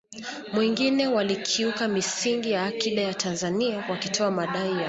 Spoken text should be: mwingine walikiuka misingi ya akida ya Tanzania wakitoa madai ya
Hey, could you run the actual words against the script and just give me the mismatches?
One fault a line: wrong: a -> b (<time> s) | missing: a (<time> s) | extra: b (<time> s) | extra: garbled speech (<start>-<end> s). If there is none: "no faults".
no faults